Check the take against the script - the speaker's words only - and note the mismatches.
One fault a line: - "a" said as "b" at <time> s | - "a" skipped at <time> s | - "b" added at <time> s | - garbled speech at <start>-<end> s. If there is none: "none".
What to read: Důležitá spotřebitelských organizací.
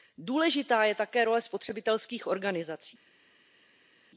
- "je také role" added at 0.8 s